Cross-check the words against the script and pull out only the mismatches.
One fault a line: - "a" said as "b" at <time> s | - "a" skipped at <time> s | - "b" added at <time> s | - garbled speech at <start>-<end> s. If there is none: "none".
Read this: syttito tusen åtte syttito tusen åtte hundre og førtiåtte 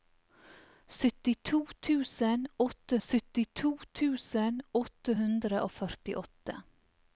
none